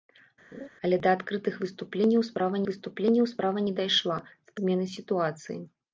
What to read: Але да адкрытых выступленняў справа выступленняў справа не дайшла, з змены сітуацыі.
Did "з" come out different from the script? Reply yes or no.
no